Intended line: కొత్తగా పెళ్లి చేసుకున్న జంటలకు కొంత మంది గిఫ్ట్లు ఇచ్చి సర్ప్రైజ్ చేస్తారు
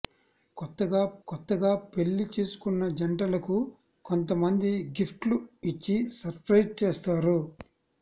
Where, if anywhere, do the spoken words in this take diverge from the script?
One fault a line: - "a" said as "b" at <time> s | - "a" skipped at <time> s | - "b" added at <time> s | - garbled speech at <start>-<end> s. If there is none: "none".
- "కొత్తగా" added at 1.3 s